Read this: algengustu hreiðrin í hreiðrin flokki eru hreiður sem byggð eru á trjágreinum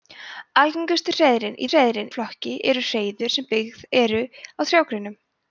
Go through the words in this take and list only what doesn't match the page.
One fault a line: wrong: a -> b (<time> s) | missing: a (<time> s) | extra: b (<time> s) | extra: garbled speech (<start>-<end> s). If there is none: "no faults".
no faults